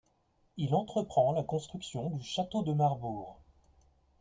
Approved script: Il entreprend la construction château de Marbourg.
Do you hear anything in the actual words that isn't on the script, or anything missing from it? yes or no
yes